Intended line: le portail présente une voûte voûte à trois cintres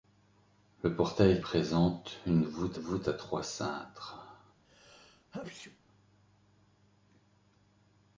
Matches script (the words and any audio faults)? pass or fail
fail